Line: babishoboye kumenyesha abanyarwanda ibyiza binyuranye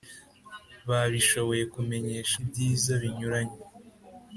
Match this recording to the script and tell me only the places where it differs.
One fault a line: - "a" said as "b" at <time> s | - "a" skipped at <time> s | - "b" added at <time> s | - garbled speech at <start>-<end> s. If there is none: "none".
- "abanyarwanda" skipped at 2.4 s